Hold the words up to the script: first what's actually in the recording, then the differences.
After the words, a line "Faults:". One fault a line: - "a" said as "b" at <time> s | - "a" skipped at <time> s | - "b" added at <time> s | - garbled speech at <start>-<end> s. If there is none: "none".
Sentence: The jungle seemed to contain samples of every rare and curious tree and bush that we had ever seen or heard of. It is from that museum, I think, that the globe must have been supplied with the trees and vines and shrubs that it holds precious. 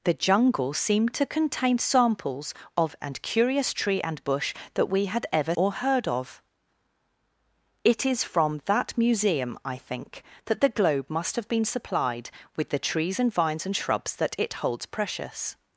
The jungle seemed to contain samples of and curious tree and bush that we had ever or heard of. It is from that museum, I think, that the globe must have been supplied with the trees and vines and shrubs that it holds precious.
Faults:
- "every rare" skipped at 3.0 s
- "seen" skipped at 5.5 s